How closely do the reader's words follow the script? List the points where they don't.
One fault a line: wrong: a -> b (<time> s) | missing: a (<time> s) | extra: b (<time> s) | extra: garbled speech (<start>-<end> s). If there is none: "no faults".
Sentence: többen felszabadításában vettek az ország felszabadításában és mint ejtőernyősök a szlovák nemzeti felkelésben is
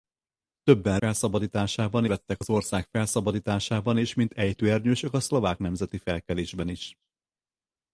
no faults